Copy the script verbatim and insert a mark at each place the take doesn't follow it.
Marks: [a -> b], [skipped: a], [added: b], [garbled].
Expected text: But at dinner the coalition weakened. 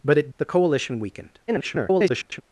But at [skipped: dinner] the coalition weakened. [garbled]